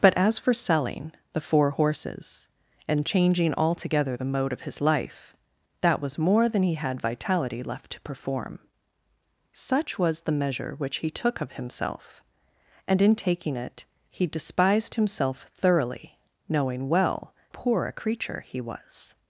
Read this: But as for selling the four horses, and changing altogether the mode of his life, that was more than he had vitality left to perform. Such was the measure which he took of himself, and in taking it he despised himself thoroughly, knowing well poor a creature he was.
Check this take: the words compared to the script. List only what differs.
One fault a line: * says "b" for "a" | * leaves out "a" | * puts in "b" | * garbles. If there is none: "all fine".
all fine